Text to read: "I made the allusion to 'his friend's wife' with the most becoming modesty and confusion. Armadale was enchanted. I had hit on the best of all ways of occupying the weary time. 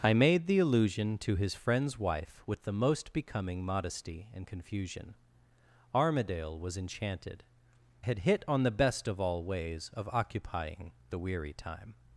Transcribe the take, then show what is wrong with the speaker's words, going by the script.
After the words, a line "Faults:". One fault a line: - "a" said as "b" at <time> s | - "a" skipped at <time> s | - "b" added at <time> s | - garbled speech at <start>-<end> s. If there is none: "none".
"I made the allusion to 'his friend's wife' with the most becoming modesty and confusion. Armadale was enchanted. had hit on the best of all ways of occupying the weary time.
Faults:
- "I" skipped at 7.4 s